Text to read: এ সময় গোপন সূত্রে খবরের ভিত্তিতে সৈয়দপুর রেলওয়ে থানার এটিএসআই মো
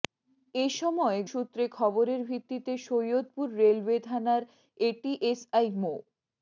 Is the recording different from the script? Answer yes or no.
yes